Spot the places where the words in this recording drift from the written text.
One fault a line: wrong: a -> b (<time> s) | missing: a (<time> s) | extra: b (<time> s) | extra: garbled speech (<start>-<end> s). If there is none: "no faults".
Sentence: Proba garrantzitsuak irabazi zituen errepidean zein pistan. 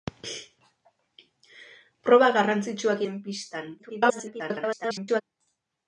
missing: irabazi zituen errepidean (3.0 s)
extra: garbled speech (3.8-5.2 s)